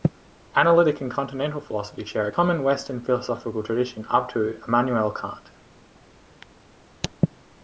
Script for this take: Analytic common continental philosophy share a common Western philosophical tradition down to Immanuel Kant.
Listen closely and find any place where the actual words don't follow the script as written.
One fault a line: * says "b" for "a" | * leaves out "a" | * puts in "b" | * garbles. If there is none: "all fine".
* says "and" for "common"
* says "up" for "down"